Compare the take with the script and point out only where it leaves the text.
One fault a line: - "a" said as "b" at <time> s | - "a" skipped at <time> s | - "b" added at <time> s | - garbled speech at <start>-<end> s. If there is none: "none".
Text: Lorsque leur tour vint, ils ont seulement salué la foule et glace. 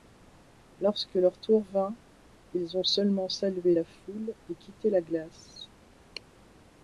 - "quitté la" added at 4.6 s